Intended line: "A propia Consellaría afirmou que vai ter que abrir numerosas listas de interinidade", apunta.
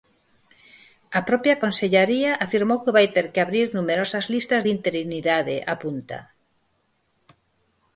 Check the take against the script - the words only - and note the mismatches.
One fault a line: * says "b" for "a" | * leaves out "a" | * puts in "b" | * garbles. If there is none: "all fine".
all fine